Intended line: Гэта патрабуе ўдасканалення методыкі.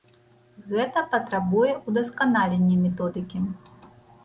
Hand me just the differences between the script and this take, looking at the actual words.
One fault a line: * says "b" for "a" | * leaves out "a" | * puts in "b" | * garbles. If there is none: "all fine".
all fine